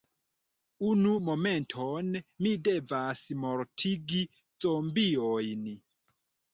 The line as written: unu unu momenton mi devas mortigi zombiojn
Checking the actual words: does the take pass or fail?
fail